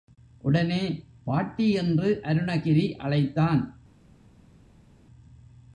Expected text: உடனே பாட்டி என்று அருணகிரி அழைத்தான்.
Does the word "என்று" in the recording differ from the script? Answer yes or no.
no